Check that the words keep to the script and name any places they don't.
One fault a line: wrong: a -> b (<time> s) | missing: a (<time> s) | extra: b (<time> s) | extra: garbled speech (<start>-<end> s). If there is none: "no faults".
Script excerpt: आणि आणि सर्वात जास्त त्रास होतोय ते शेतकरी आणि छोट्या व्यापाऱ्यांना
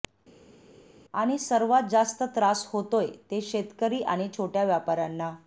missing: आणि (1.4 s)